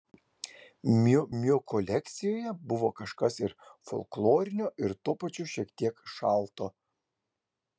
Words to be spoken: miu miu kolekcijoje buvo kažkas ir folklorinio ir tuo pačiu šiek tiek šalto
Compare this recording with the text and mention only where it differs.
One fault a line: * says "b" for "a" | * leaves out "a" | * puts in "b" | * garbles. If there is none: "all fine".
all fine